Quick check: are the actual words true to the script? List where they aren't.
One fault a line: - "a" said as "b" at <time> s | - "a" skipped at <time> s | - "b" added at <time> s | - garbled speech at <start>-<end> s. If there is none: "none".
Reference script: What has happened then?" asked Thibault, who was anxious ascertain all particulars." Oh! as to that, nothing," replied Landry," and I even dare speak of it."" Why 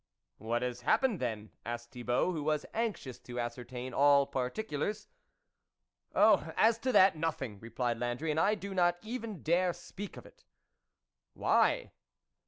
- "to" added at 3.2 s
- "do not" added at 8.6 s